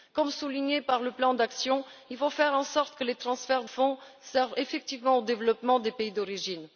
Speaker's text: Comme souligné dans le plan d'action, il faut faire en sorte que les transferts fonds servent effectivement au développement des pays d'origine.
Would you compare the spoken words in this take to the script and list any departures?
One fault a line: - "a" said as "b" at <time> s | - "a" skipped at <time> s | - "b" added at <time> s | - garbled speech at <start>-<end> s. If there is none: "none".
none